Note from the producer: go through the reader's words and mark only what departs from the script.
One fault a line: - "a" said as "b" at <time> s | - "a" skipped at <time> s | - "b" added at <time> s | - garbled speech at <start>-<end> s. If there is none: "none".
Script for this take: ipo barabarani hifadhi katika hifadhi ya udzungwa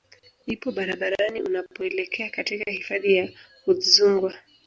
- "hifadhi" said as "unapoelekea" at 1.4 s